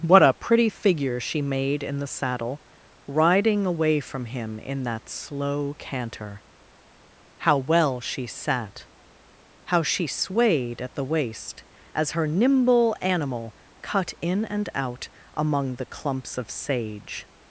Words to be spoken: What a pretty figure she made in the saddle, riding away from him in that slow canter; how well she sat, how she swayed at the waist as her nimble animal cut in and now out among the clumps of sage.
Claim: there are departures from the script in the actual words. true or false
true